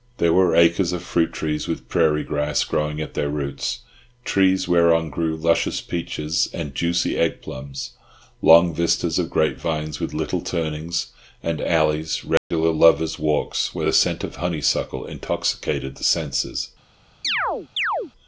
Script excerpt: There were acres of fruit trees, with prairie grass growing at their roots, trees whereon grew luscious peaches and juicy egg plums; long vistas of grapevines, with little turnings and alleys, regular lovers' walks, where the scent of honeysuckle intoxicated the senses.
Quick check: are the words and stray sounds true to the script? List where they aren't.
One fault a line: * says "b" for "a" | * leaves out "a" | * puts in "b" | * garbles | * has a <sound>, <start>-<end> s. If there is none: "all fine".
* has a dropout, 12.4-12.5 s
* has a chirp, 17.2-18.1 s